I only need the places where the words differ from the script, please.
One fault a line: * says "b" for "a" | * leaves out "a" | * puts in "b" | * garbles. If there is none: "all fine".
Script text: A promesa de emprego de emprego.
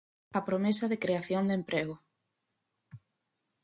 * says "creación" for "emprego"